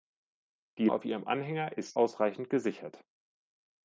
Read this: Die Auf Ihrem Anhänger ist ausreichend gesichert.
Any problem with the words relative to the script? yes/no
no